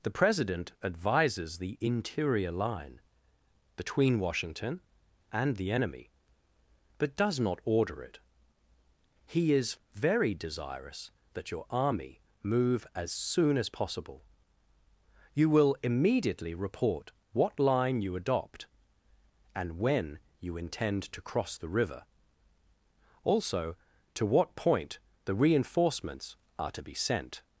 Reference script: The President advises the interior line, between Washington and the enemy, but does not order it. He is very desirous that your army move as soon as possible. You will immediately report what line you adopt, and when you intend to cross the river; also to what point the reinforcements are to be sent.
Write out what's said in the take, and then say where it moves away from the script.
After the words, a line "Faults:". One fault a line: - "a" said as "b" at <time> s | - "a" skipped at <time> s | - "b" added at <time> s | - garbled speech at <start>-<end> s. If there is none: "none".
The President advises the interior line, between Washington and the enemy, but does not order it. He is very desirous that your army move as soon as possible. You will immediately report what line you adopt, and when you intend to cross the river; also to what point the reinforcements are to be sent.
Faults:
none